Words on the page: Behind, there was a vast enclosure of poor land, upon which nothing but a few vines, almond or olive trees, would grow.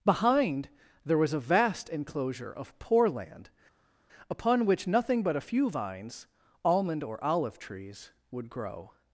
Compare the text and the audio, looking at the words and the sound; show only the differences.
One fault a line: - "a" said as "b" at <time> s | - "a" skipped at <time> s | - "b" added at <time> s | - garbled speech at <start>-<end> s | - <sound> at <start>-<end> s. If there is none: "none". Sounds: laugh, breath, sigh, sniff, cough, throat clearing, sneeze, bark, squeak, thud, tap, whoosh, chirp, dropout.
none